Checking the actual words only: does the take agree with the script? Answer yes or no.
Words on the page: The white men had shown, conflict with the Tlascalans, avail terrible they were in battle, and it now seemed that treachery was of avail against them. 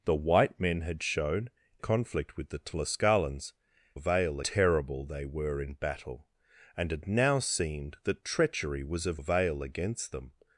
yes